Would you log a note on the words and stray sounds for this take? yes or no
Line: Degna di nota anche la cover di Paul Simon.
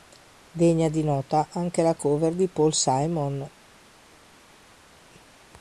no